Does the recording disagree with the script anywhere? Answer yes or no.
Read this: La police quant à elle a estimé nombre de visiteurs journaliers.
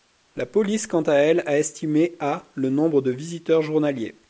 yes